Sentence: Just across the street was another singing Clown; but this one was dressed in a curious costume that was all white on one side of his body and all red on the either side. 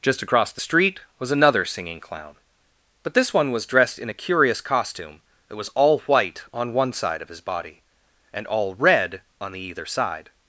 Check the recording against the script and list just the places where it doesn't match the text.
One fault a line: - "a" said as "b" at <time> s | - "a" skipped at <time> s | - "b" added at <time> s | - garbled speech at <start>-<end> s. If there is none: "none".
none